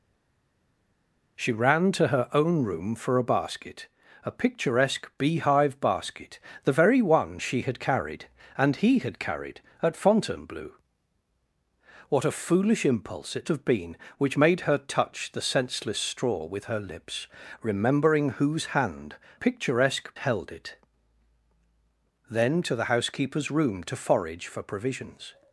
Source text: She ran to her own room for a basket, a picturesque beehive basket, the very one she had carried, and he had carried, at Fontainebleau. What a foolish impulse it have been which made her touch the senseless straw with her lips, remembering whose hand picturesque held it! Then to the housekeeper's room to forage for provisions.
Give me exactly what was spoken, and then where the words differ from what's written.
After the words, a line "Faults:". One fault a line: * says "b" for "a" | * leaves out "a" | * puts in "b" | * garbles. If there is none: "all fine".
She ran to her own room for a basket, a picturesque beehive basket, the very one she had carried, and he had carried, at Fontainebleau. What a foolish impulse it have been which made her touch the senseless straw with her lips, remembering whose hand picturesque held it! Then to the housekeeper's room to forage for provisions.
Faults:
all fine